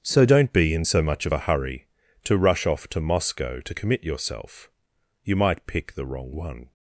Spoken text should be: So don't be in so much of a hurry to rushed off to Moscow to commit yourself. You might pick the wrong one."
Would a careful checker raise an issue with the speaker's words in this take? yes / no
yes